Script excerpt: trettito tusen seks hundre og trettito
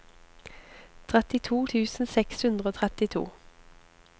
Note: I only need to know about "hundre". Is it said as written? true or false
true